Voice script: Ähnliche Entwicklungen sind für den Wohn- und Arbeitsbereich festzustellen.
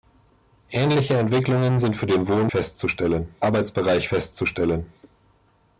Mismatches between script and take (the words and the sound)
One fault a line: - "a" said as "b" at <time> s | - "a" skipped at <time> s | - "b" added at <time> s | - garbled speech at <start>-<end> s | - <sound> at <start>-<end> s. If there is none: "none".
- "und" said as "festzustellen" at 2.5 s